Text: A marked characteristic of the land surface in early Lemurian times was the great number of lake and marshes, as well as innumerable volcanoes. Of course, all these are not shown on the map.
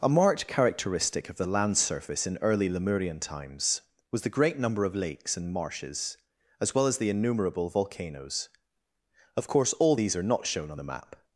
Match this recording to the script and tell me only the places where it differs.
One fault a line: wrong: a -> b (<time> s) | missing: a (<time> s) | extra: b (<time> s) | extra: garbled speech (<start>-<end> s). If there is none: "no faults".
wrong: lake -> lakes (5.0 s)
extra: the (7.0 s)